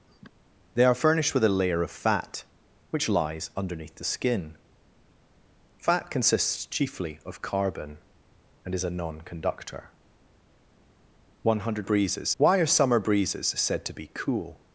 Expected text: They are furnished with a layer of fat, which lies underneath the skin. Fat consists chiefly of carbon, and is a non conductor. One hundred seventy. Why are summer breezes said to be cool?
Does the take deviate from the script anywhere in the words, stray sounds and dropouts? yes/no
yes